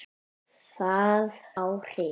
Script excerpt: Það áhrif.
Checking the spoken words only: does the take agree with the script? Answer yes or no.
yes